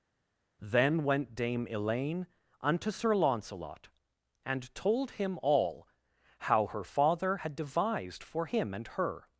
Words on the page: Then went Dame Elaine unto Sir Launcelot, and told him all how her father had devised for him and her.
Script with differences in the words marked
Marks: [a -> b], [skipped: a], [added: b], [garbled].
Then went Dame Elaine unto Sir Launcelot, and told him all how her father had devised for him and her.